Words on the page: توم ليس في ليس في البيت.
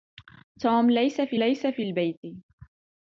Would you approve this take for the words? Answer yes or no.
yes